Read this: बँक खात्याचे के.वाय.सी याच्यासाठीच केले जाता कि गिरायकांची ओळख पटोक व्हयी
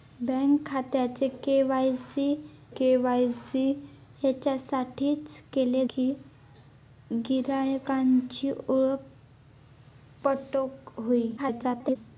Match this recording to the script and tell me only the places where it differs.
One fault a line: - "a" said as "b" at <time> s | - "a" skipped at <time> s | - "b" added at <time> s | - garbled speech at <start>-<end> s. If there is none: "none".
- "के.वाय.सी" added at 2.8 s
- "जाता" skipped at 5.8 s
- garbled speech at 11.4-12.0 s